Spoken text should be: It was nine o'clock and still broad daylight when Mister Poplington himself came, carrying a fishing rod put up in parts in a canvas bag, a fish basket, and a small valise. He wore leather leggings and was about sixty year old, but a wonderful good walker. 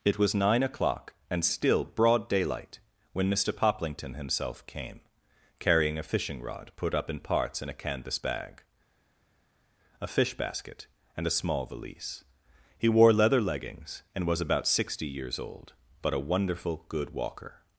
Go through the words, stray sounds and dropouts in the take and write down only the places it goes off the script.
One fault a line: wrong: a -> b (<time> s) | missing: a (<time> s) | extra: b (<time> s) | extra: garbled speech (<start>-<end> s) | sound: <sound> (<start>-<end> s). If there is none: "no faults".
wrong: year -> years (15.1 s)